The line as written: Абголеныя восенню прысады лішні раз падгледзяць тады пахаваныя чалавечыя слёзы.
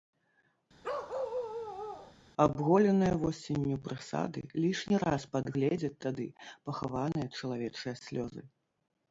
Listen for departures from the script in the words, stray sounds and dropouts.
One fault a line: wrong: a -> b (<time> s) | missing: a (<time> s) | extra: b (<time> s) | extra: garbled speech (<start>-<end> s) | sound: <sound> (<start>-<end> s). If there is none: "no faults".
sound: bark (0.8-2.2 s)